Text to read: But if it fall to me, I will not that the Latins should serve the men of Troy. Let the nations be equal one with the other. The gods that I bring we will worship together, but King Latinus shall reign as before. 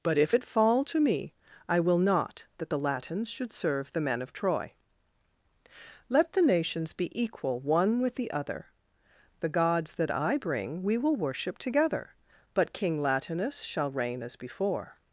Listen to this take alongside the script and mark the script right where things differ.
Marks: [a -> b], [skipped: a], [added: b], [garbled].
But if it fall to me, I will not that the Latins should serve the men of Troy. Let the nations be equal one with the other. The gods that I bring we will worship together, but King Latinus shall reign as before.